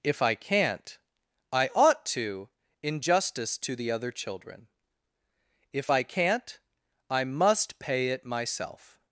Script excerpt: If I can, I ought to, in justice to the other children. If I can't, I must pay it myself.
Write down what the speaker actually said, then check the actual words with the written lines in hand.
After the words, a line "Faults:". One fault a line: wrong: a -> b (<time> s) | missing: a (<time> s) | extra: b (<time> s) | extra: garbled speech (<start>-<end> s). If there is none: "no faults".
If I can't, I ought to, in justice to the other children. If I can't, I must pay it myself.
Faults:
wrong: can -> can't (0.3 s)